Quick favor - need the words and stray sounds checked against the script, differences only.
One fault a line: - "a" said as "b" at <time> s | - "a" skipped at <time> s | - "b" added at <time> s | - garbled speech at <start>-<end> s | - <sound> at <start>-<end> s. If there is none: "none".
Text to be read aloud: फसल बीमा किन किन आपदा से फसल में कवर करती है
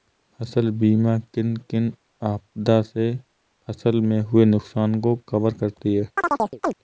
- "हुए नुकसान को" added at 4.2 s
- chirp at 6.2-6.8 s